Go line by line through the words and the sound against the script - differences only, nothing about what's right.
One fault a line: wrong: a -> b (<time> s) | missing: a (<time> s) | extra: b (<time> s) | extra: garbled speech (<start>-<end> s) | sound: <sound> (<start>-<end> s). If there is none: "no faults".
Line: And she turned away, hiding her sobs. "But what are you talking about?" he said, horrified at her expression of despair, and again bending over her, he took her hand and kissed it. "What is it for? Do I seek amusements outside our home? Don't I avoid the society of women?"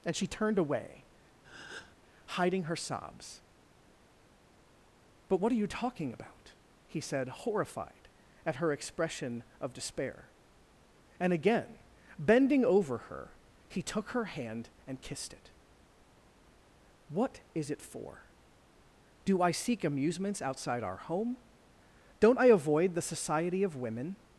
sound: breath (1.4-2.0 s)